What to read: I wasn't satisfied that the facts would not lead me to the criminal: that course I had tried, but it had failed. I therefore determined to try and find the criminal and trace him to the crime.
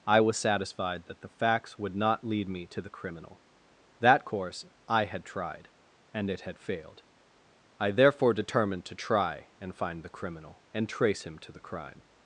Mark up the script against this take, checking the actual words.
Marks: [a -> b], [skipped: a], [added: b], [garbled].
I [wasn't -> was] satisfied that the facts would not lead me to the criminal: that course I had tried, [but -> and] it had failed. I therefore determined to try and find the criminal and trace him to the crime.